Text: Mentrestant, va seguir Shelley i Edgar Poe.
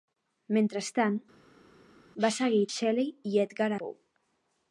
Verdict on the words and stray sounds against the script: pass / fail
pass